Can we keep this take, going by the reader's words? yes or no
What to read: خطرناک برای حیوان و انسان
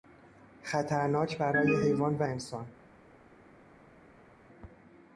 yes